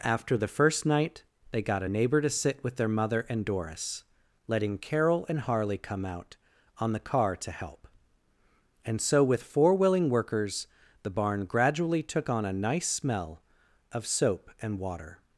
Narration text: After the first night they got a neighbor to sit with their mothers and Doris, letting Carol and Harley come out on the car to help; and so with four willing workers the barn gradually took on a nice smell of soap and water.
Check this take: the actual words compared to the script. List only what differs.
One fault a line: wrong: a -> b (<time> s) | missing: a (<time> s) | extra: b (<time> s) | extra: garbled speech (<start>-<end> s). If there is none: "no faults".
wrong: mothers -> mother (2.9 s)